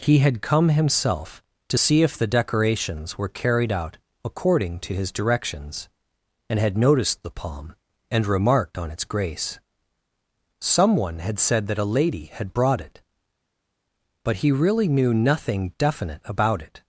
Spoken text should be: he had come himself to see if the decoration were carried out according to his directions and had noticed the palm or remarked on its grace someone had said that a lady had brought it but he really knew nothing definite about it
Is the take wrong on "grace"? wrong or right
right